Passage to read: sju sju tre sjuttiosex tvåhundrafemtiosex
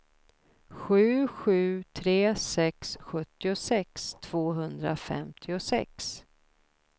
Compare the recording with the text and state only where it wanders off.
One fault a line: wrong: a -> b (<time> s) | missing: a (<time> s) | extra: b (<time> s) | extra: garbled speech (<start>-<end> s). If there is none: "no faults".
extra: sex (2.4 s)